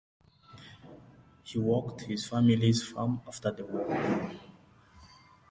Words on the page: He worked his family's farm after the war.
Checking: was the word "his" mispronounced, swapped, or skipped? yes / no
no